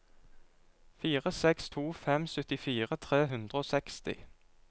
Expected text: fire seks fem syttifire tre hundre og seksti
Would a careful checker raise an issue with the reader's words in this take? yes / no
yes